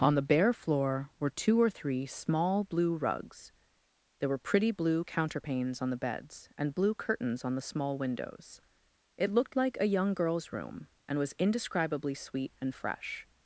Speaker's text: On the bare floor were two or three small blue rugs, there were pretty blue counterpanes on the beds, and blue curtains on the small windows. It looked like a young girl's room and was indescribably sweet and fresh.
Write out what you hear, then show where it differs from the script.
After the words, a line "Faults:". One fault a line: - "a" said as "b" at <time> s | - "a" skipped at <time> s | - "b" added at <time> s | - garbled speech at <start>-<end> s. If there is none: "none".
On the bare floor were two or three small blue rugs, there were pretty blue counterpanes on the beds, and blue curtains on the small windows. It looked like a young girl's room and was indescribably sweet and fresh.
Faults:
none